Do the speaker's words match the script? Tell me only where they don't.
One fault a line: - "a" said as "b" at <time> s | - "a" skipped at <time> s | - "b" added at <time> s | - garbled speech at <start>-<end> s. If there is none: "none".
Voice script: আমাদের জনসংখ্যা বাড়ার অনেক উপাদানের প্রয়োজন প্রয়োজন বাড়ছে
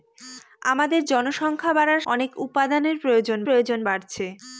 none